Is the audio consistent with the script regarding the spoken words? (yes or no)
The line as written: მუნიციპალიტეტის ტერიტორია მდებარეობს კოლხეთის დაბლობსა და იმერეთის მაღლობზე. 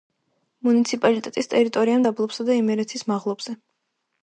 no